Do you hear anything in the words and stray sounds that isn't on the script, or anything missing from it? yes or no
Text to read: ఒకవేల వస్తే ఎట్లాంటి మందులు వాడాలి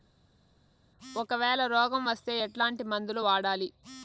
yes